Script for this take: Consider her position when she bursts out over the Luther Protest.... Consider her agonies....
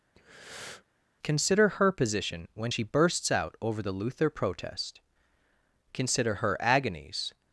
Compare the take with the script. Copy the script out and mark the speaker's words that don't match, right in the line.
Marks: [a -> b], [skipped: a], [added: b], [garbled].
Consider her position when she bursts out over the Luther Protest.... Consider her agonies....